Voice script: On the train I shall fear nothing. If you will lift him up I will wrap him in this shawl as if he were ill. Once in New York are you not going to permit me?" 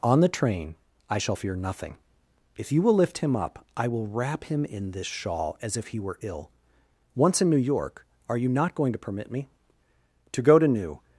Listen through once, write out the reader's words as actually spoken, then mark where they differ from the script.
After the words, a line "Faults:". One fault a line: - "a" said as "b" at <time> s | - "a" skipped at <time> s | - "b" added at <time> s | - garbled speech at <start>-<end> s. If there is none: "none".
On the train I shall fear nothing. If you will lift him up I will wrap him in this shawl as if he were ill. Once in New York are you not going to permit me?" "To go to New
Faults:
- "To go to New" added at 10.3 s